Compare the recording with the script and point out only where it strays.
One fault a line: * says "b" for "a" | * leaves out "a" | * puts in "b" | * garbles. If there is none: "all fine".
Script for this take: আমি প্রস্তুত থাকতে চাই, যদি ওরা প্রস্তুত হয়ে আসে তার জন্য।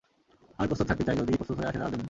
* leaves out "ওরা"